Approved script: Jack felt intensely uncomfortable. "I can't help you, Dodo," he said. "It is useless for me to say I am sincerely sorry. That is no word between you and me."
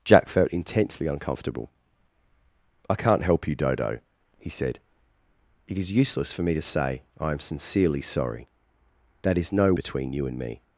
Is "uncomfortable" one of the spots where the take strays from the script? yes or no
no